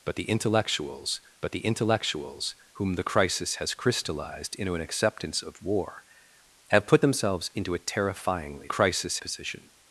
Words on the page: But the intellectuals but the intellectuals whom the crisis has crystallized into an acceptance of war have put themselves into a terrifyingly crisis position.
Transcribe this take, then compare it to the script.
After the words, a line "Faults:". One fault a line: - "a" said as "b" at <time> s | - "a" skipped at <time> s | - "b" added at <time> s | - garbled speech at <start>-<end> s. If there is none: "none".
But the intellectuals but the intellectuals whom the crisis has crystallized into an acceptance of war have put themselves into a terrifyingly crisis position.
Faults:
none